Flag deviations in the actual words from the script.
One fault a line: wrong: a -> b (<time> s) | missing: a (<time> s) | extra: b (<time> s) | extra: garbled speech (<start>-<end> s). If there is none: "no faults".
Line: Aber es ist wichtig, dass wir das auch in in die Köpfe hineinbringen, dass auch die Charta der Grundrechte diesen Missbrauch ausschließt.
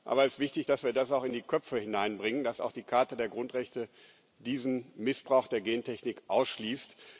missing: in (1.3 s)
extra: der Gentechnik (5.5 s)